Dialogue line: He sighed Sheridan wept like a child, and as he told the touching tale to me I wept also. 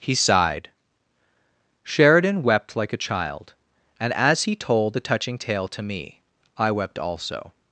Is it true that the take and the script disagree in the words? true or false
false